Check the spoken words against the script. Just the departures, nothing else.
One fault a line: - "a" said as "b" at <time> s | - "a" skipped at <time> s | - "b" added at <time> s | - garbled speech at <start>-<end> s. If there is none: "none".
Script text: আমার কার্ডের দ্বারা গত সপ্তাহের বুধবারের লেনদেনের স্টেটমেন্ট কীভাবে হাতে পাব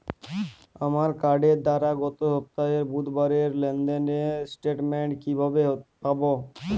- "হাতে" skipped at 5.6 s